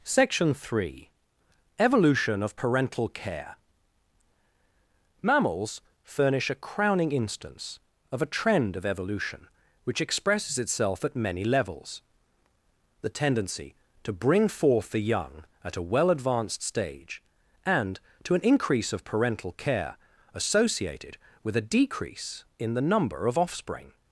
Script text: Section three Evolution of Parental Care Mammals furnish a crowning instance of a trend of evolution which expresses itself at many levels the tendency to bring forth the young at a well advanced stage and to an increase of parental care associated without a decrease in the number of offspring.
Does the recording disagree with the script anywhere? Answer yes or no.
yes